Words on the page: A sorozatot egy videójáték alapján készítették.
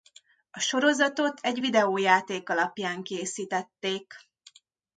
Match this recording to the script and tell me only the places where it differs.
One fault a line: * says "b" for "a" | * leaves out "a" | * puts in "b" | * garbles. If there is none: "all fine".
all fine